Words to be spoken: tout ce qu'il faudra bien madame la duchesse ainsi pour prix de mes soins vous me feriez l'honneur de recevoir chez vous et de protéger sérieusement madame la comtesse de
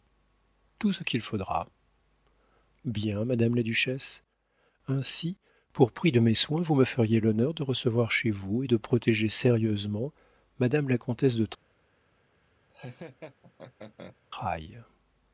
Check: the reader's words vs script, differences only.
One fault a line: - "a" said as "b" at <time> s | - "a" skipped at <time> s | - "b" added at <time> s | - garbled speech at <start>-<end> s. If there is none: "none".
none